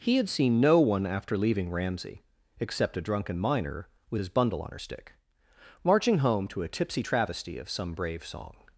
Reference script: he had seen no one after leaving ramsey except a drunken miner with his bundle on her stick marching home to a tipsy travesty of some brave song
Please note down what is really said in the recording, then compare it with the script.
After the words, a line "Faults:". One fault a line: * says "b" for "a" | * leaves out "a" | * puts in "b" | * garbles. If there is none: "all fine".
he had seen no one after leaving ramsey except a drunken miner with his bundle on her stick marching home to a tipsy travesty of some brave song
Faults:
all fine